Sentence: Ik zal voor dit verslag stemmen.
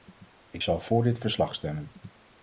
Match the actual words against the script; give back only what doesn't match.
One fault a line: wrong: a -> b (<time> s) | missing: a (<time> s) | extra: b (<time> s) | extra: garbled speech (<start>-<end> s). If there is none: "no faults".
no faults